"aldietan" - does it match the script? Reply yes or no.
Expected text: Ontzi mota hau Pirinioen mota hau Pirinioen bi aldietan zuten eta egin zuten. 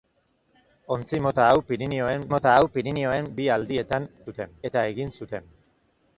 yes